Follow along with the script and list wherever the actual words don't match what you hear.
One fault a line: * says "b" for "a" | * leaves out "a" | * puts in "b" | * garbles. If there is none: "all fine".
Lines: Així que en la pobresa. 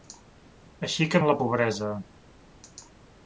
all fine